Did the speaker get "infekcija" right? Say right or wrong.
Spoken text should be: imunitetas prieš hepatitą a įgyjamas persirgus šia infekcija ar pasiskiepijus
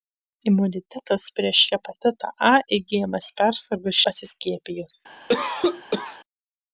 wrong